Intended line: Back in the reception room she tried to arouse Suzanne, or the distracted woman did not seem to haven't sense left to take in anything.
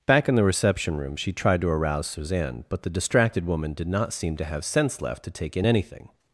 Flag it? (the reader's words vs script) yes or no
yes